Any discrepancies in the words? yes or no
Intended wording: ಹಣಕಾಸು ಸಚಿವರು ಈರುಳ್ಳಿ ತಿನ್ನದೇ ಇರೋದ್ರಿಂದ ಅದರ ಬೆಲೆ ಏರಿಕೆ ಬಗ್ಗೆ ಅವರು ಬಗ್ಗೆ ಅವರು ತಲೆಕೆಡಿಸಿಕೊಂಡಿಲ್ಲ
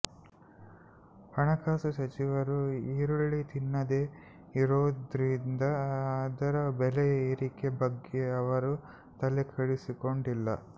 yes